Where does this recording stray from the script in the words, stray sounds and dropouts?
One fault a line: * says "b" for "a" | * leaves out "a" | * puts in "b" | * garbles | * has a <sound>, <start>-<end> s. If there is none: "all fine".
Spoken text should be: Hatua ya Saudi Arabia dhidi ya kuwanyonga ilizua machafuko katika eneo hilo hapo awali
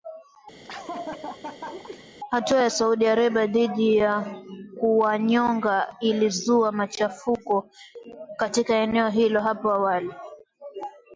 * has a laugh, 0.6-2.1 s